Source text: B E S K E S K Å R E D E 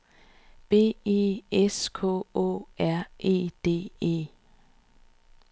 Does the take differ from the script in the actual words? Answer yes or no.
yes